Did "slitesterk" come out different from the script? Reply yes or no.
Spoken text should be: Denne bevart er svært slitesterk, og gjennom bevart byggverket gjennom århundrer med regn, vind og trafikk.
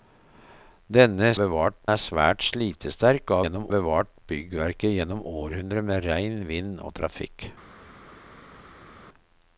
no